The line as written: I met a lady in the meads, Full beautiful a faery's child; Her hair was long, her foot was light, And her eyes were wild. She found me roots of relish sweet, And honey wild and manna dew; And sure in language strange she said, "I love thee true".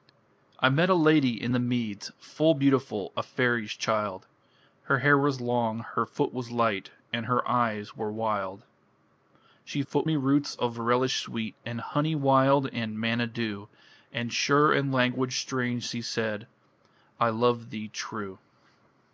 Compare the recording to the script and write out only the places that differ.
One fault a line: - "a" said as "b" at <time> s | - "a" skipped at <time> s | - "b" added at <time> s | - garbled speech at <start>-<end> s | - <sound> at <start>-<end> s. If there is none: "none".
- "found" said as "foot" at 9.8 s